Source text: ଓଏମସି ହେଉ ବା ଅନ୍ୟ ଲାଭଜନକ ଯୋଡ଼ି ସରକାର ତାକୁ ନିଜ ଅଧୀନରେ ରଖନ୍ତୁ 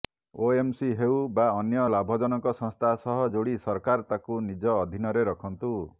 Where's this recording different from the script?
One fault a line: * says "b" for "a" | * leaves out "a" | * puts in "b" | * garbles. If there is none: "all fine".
* puts in "ସଂସ୍ଥା ସହ"